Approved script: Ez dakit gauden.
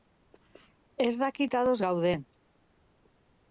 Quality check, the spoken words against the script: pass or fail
fail